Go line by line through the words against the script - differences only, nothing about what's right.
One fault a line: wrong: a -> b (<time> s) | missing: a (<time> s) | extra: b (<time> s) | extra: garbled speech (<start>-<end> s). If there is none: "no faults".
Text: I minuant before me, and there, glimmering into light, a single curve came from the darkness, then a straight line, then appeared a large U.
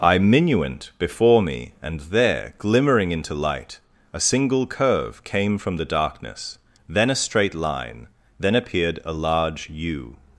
no faults